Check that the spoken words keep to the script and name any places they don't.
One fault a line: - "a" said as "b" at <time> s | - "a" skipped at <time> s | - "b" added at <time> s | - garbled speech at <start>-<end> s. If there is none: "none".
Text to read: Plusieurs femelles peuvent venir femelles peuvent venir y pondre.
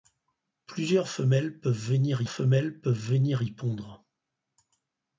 none